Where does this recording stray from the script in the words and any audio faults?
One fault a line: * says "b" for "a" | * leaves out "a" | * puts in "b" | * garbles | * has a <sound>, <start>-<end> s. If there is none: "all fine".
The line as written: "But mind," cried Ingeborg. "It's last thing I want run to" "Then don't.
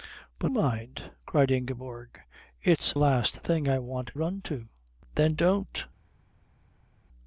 all fine